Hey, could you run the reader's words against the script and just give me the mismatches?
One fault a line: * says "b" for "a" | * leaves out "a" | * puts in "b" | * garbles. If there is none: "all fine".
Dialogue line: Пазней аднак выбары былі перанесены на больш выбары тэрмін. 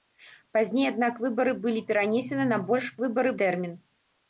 all fine